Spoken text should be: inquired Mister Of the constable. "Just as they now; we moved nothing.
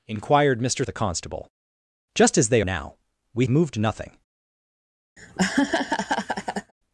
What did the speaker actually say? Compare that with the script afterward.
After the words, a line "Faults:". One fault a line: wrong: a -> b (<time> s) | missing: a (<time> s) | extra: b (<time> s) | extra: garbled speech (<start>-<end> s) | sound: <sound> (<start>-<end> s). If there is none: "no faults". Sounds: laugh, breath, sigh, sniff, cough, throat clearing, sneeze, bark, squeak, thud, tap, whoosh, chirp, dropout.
inquired Mister Of the constable. "Just as they now; we moved nothing.
Faults:
sound: laugh (5.2-6.7 s)